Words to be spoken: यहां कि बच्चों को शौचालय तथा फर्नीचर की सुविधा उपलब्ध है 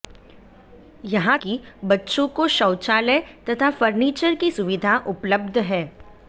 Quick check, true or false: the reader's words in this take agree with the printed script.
true